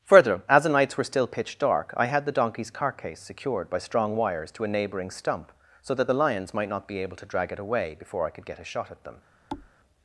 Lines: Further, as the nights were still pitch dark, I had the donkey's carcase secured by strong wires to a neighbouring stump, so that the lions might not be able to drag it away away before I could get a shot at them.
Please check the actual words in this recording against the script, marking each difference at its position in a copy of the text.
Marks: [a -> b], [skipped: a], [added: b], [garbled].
Further, as the nights were still pitch dark, I had the donkey's carcase secured by strong wires to a neighbouring stump, so that the lions might not be able to drag it away [skipped: away] before I could get a shot at them.